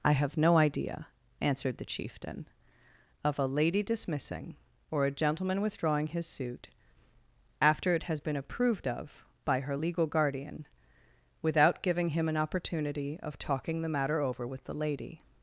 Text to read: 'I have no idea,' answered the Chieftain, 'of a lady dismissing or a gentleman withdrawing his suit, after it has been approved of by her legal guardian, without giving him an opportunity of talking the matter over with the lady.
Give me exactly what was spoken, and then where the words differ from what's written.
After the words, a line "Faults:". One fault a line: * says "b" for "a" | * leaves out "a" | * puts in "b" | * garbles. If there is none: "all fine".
'I have no idea,' answered the Chieftain, 'of a lady dismissing or a gentleman withdrawing his suit, after it has been approved of by her legal guardian, without giving him an opportunity of talking the matter over with the lady.
Faults:
all fine